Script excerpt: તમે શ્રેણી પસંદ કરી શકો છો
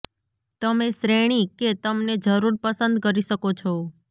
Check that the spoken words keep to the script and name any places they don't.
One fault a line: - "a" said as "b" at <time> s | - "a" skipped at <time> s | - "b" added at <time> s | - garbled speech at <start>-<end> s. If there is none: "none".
- "કે તમને જરૂર" added at 1.6 s